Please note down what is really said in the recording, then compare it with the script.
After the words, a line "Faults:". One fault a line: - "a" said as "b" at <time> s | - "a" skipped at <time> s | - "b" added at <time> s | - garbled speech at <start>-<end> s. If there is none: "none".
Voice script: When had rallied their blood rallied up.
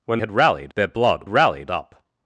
When had rallied their blood rallied up.
Faults:
none